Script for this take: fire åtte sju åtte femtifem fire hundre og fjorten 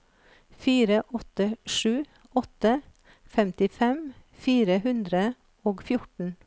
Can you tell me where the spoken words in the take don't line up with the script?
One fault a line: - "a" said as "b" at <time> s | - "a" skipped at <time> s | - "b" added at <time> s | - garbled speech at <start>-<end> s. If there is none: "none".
none